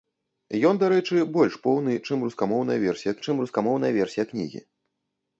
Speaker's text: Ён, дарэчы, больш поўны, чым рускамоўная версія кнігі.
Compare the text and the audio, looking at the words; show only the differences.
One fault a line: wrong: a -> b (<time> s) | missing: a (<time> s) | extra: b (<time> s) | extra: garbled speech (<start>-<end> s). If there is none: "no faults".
extra: чым рускамоўная версія (3.2 s)